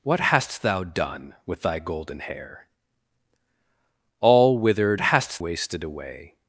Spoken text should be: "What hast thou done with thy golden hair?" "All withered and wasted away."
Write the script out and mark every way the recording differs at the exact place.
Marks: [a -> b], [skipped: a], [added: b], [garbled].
"What hast thou done with thy golden hair?" "All withered [and -> hast] wasted away."